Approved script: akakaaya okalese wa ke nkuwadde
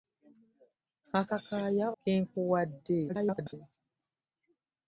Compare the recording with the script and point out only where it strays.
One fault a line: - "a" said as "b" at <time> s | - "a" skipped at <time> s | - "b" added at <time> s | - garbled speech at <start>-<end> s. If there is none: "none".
- "okalese wa" skipped at 1.9 s
- garbled speech at 3.1-3.5 s